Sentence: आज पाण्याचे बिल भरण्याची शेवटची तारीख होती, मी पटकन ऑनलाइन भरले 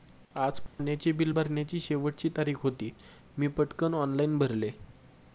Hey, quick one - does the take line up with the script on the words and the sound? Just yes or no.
no